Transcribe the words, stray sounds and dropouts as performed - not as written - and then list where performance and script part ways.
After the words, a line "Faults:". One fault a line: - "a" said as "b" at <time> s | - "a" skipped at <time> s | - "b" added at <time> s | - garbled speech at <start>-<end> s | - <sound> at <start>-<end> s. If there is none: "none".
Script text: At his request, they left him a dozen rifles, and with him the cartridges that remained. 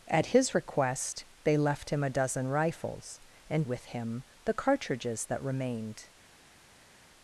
At his request, they left him a dozen rifles, and with him the cartridges that remained.
Faults:
none